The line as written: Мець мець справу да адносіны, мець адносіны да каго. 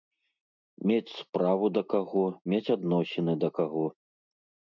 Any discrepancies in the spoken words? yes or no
yes